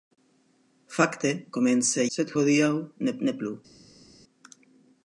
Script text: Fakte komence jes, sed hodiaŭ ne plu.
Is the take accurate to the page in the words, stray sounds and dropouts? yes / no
no